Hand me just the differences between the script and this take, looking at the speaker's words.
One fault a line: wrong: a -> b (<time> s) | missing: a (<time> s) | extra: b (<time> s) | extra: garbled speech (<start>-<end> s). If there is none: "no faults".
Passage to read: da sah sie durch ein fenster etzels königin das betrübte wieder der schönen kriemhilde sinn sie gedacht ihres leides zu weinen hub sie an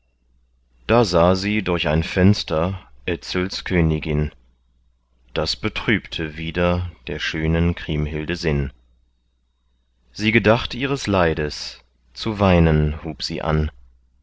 no faults